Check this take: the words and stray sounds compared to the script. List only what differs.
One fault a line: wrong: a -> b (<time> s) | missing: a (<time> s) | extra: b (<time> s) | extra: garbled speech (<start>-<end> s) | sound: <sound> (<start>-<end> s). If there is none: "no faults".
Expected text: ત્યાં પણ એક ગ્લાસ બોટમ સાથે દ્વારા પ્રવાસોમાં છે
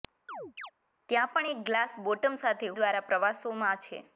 sound: chirp (0.3-0.7 s)